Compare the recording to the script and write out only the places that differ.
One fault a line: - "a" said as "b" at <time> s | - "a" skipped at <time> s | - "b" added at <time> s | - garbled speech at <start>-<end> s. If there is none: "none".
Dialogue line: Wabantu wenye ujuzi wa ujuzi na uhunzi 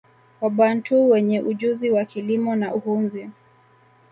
- "ujuzi" said as "kilimo" at 2.0 s